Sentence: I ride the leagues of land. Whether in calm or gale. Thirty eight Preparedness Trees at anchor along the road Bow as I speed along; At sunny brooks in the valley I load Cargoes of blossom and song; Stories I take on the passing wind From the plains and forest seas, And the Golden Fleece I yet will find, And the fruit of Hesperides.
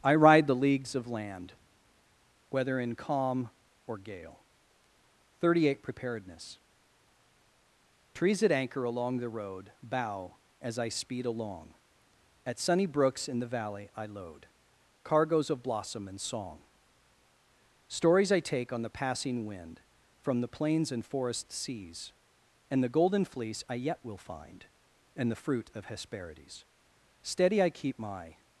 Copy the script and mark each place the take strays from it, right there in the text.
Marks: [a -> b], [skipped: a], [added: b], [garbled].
I ride the leagues of land. Whether in calm or gale. Thirty eight Preparedness Trees at anchor along the road Bow as I speed along; At sunny brooks in the valley I load Cargoes of blossom and song; Stories I take on the passing wind From the plains and forest seas, And the Golden Fleece I yet will find, And the fruit of Hesperides. [added: Steady I keep my]